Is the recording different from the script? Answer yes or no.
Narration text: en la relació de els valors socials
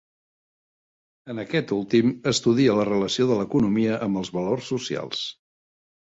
yes